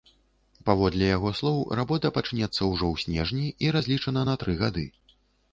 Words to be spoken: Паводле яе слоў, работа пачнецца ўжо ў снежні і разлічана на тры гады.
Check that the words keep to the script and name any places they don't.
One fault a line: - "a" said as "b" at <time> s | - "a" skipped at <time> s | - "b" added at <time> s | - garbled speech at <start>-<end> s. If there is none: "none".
- "яе" said as "яго" at 1.2 s